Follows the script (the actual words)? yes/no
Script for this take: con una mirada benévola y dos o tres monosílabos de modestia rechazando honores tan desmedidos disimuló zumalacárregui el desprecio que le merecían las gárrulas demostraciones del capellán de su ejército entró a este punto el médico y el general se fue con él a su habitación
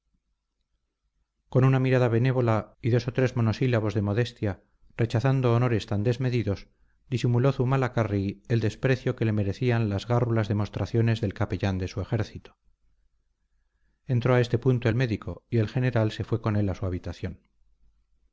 yes